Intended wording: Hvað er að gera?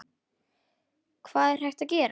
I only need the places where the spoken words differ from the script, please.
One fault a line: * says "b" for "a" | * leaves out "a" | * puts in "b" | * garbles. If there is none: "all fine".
* puts in "hægt"